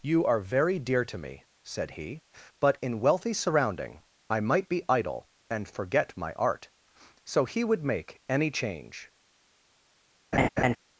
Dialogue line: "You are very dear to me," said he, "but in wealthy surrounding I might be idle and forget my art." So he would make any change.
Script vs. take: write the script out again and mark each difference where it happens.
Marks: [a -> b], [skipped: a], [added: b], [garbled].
"You are very dear to me," said he, "but in wealthy surrounding I might be idle and forget my art." So he would make any change.